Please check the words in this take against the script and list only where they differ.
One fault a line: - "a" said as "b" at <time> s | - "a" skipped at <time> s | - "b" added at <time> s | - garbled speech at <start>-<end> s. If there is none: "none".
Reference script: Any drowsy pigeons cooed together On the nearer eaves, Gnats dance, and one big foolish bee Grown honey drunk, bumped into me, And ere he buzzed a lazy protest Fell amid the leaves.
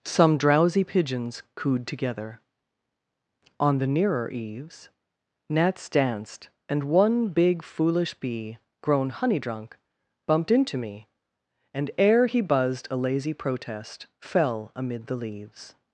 - "Any" said as "Some" at 0.1 s
- "dance" said as "danced" at 5.9 s